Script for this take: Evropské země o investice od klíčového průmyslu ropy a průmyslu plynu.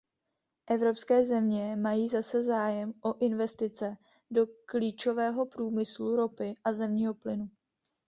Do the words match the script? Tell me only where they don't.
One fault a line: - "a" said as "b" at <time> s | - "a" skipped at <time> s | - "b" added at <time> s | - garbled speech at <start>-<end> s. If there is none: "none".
- "mají zase zájem" added at 1.8 s
- "od" said as "do" at 4.3 s
- "průmyslu" said as "zemního" at 6.7 s